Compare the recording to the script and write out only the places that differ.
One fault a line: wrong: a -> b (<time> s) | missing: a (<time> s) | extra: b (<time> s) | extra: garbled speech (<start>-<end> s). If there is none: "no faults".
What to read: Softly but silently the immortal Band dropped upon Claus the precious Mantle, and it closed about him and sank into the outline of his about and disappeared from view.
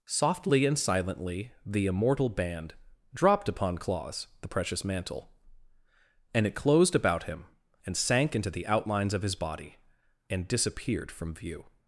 wrong: but -> and (0.7 s)
wrong: outline -> outlines (8.7 s)
wrong: about -> body (9.3 s)